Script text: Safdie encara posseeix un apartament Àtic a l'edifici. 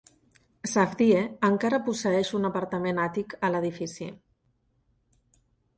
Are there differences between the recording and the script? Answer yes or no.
no